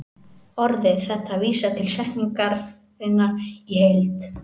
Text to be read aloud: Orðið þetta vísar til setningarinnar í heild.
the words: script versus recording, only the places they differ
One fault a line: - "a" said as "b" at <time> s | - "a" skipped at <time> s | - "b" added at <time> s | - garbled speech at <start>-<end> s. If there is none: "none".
none